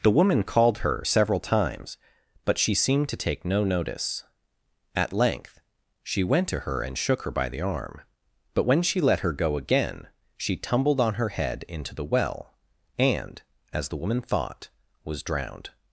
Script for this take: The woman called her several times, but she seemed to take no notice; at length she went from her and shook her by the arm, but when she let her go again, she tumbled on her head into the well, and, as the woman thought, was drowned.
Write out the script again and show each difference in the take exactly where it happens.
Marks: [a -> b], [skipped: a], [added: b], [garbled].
The woman called her several times, but she seemed to take no notice; at length she went [from -> to] her and shook her by the arm, but when she let her go again, she tumbled on her head into the well, and, as the woman thought, was drowned.